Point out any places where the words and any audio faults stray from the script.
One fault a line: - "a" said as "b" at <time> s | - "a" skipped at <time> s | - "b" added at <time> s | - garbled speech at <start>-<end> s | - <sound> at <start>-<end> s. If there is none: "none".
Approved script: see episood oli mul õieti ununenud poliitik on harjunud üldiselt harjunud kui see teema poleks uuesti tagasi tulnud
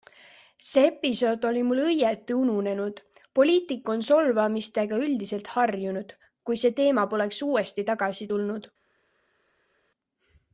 - "harjunud" said as "solvamistega" at 4.1 s